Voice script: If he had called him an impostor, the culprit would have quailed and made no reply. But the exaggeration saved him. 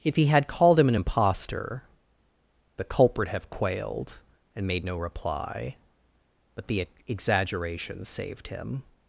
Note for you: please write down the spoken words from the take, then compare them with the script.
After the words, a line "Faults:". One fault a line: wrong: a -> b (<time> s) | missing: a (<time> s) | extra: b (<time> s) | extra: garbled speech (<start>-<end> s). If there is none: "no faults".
If he had called him an impostor, the culprit have quailed and made no reply. But the exaggeration saved him.
Faults:
missing: would (3.3 s)